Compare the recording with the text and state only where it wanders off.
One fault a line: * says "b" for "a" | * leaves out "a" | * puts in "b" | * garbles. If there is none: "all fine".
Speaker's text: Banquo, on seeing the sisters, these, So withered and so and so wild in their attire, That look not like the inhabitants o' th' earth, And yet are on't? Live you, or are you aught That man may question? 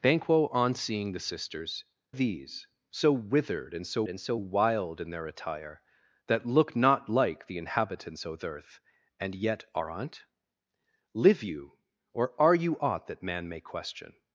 all fine